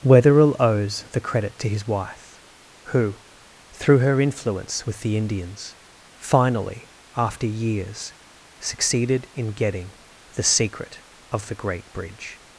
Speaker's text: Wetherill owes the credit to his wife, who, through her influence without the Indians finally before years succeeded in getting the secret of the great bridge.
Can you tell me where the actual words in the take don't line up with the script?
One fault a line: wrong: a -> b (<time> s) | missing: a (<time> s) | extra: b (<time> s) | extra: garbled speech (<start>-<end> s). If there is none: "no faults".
wrong: without -> with (4.9 s)
wrong: before -> after (7.2 s)